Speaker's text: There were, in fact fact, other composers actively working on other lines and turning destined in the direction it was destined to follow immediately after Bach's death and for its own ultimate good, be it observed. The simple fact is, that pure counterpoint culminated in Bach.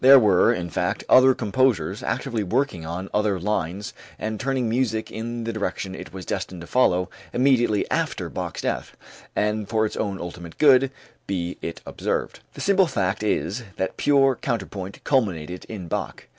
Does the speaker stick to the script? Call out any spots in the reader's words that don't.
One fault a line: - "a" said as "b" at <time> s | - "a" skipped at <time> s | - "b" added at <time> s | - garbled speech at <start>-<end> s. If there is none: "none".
- "fact" skipped at 1.0 s
- "destined" said as "music" at 4.7 s